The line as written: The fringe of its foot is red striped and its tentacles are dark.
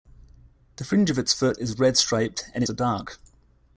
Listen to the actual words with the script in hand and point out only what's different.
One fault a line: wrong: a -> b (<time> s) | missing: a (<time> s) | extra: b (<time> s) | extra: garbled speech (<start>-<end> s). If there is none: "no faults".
missing: its tentacles (2.6 s)